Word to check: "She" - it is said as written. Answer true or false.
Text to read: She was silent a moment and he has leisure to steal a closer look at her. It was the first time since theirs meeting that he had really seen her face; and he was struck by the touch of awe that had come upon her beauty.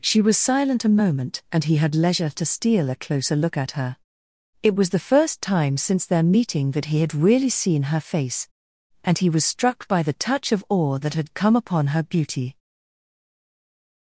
true